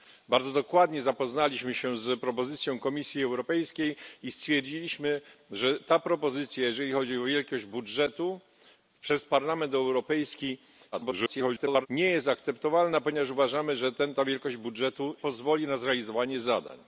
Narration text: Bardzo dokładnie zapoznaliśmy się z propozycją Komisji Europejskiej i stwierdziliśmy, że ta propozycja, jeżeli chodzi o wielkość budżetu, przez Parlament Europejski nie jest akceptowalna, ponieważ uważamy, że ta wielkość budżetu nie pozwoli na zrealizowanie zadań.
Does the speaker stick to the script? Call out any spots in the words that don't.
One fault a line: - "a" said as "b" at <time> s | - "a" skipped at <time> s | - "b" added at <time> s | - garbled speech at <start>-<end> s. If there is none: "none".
- garbled speech at 10.9-11.9 s
- "nie" skipped at 15.2 s